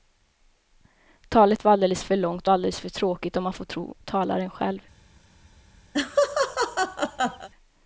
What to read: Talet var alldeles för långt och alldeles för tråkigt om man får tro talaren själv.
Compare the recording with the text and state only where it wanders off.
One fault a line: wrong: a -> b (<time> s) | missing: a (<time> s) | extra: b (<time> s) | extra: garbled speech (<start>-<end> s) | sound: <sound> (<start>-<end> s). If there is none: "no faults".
sound: laugh (5.9-7.5 s)